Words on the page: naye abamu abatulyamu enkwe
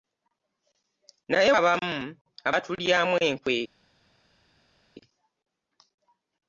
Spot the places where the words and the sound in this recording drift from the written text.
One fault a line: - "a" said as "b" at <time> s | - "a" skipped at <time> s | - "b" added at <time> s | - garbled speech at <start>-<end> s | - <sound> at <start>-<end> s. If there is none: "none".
none